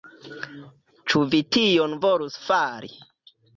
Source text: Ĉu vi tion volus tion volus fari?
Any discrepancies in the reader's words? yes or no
yes